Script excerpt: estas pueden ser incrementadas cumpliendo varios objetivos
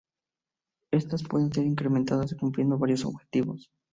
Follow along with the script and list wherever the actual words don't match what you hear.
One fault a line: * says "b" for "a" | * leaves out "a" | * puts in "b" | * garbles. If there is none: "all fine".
all fine